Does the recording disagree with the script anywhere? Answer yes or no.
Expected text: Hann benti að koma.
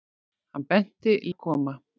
no